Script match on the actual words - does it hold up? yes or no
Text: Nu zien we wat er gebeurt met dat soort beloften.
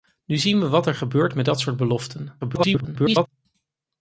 no